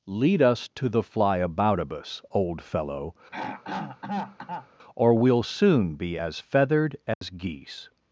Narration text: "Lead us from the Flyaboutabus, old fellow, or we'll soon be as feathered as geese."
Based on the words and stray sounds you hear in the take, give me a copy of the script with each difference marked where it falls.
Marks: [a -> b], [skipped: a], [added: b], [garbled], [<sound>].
"Lead us [from -> to] the Flyaboutabus, old fellow, [throat clearing] or we'll soon be as feathered as [dropout] geese."